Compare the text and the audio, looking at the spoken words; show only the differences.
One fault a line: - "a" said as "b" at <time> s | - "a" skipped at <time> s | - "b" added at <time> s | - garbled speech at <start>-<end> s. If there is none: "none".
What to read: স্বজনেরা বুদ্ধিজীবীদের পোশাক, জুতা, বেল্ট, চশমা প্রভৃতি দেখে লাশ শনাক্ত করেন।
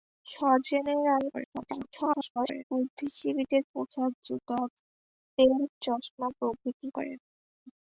- garbled speech at 1.3-2.6 s
- "দেখে লাশ শনাক্ত" skipped at 6.9 s